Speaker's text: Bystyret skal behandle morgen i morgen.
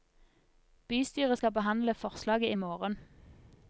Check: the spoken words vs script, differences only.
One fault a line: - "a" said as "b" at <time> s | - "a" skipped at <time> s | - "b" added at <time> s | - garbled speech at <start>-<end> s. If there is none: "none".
- "morgen" said as "forslaget" at 1.9 s